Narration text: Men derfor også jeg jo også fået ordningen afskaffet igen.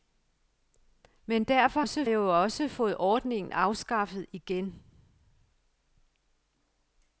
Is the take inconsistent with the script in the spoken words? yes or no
no